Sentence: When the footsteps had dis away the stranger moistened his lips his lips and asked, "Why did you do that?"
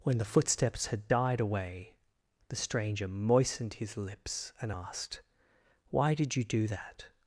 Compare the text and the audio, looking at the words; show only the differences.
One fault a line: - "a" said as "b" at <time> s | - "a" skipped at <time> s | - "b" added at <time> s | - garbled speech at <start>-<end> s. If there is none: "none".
- "dis" said as "died" at 1.1 s
- "his lips" skipped at 4.5 s